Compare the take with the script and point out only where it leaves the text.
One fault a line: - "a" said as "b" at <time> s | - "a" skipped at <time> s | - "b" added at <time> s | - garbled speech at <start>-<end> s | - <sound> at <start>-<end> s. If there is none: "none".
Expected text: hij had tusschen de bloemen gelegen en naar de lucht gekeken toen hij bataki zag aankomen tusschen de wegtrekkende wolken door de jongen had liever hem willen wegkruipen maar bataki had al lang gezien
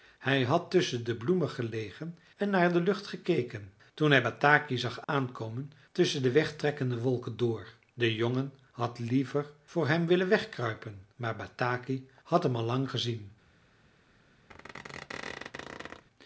- dropout at 5.0-5.1 s
- "voor" added at 9.6 s
- "hem" added at 12.4 s
- squeak at 14.5-16.0 s